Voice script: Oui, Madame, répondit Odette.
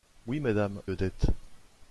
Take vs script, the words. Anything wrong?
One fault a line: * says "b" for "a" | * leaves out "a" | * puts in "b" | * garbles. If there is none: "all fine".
* leaves out "répondit"